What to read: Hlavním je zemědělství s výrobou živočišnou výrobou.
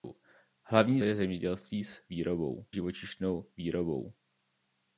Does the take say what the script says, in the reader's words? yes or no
yes